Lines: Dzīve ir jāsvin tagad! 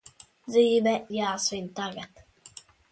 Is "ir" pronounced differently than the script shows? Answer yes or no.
yes